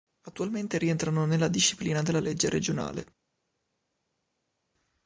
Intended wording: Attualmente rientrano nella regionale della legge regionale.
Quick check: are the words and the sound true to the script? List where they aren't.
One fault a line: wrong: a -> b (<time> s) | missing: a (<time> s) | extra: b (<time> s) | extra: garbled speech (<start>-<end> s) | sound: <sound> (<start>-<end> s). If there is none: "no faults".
wrong: regionale -> disciplina (1.5 s)